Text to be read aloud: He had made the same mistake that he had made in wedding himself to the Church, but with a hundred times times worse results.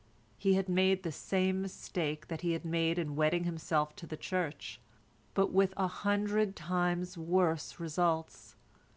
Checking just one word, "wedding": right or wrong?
right